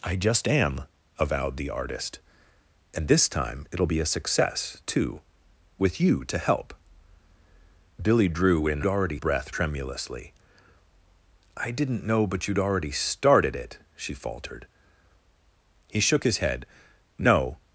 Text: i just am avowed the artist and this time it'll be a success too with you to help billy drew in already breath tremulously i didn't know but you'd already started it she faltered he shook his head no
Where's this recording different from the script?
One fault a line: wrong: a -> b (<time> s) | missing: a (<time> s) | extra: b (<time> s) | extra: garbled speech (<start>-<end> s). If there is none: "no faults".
no faults